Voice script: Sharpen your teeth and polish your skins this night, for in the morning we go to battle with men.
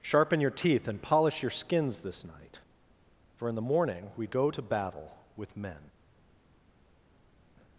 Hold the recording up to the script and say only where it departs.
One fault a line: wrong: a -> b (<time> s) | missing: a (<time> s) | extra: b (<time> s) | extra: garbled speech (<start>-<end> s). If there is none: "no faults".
no faults